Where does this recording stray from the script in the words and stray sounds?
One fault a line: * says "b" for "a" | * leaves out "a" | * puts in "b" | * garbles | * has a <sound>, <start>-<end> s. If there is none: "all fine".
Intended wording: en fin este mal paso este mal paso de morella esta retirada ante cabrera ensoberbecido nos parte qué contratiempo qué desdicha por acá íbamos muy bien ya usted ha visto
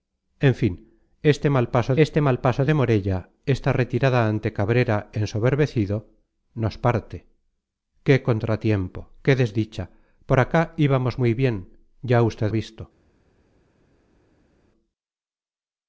all fine